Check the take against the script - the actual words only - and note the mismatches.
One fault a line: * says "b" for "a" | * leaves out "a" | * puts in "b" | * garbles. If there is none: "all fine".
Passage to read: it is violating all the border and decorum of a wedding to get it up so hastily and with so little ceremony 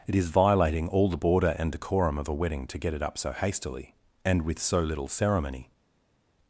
all fine